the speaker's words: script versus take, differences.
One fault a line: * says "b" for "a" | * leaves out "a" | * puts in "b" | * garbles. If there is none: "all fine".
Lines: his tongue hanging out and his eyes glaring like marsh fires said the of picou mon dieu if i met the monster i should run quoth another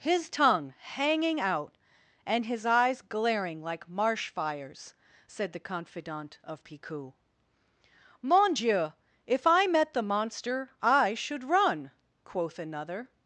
* puts in "confidant"